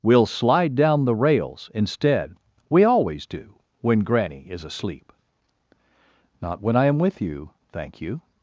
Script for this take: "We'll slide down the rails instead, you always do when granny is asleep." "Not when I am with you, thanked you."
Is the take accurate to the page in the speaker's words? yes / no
no